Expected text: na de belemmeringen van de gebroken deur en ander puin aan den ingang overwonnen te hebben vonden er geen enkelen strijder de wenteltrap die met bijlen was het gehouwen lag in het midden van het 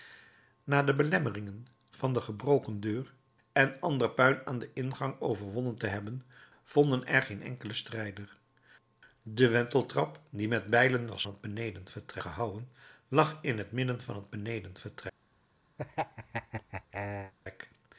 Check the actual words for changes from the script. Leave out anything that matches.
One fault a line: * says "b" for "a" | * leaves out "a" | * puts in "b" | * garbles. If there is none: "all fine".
all fine